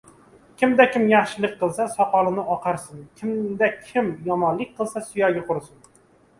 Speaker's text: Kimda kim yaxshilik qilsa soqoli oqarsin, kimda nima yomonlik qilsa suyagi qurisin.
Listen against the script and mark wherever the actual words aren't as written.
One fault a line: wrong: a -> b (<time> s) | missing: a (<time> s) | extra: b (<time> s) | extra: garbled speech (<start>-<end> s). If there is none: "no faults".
wrong: nima -> kim (3.9 s)